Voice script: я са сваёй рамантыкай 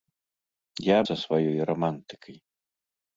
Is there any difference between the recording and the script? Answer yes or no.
no